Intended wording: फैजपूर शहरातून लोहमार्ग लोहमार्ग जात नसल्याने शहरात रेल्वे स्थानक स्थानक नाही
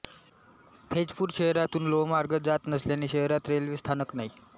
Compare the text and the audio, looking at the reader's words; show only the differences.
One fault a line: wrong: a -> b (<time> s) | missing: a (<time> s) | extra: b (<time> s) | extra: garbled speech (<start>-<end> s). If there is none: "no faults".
missing: लोहमार्ग (2.4 s)
missing: स्थानक (4.1 s)